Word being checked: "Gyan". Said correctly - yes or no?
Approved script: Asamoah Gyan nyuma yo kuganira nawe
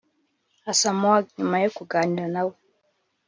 no